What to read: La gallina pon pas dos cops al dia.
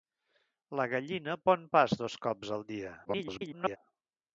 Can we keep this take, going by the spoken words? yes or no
no